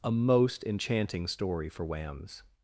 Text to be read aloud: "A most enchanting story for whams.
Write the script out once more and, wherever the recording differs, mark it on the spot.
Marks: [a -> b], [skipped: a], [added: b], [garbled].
"A most enchanting story for whams.